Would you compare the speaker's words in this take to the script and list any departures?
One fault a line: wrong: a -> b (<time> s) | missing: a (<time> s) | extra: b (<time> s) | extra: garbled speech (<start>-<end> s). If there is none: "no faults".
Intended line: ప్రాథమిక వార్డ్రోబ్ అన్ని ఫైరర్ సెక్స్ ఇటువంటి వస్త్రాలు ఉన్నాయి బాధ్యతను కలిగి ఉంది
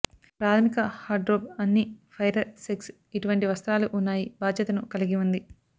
no faults